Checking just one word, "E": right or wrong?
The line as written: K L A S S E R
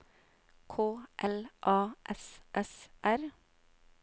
wrong